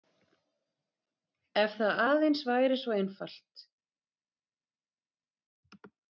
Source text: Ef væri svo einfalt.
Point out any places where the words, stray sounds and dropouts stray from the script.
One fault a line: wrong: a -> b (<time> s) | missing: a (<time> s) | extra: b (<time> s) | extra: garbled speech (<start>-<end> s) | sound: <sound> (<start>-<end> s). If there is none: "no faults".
extra: það aðeins (1.8 s)